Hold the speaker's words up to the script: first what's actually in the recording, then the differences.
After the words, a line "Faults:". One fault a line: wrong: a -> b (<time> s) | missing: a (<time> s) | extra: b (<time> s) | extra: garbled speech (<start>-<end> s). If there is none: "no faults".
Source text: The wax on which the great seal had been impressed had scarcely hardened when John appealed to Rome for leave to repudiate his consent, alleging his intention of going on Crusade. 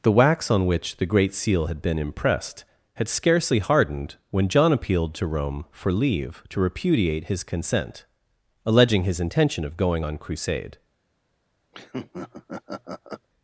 The wax on which the great seal had been impressed had scarcely hardened when John appealed to Rome for leave to repudiate his consent, alleging his intention of going on Crusade.
Faults:
no faults